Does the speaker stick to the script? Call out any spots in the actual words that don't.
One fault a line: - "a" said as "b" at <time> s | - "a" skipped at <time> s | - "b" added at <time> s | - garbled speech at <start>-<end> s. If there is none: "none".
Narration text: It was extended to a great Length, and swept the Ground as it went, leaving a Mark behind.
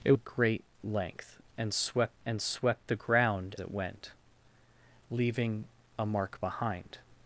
- "was extended to" skipped at 0.1 s
- "and swept" added at 2.3 s
- "as" skipped at 3.5 s